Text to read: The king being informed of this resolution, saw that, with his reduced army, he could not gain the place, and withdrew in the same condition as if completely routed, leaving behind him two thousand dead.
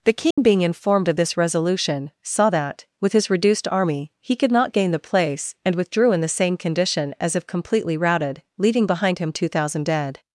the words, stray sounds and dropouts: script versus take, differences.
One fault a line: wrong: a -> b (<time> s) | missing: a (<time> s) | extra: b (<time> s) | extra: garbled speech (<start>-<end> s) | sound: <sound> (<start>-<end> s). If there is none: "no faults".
sound: dropout (0.3-0.4 s)